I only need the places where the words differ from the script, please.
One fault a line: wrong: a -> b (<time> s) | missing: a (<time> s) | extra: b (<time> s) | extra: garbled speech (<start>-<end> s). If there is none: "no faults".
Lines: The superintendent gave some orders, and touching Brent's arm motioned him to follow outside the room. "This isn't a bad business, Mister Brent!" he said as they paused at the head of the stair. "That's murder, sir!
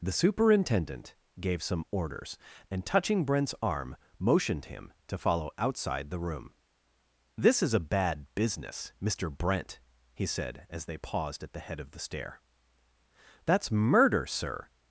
wrong: isn't -> is (7.6 s)